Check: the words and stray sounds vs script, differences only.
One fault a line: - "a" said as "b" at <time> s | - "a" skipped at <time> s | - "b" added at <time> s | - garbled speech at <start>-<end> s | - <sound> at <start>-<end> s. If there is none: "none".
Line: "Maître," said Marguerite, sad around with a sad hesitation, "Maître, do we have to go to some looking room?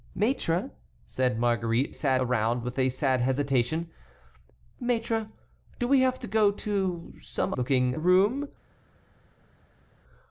none